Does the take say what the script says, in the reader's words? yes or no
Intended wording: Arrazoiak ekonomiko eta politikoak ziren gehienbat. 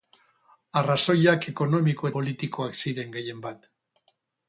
no